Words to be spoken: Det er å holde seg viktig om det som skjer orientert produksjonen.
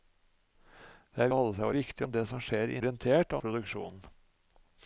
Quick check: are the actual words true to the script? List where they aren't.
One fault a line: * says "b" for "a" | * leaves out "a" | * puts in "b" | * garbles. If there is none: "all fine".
all fine